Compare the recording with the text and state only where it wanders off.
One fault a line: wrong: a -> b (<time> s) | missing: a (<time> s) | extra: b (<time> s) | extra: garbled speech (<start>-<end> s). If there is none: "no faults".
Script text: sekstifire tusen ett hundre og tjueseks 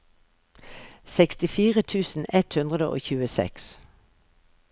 no faults